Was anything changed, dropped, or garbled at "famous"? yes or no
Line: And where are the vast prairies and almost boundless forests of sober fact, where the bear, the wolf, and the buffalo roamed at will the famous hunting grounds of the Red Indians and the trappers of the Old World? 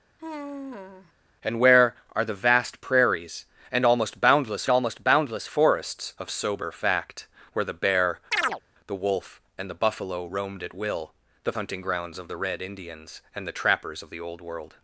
yes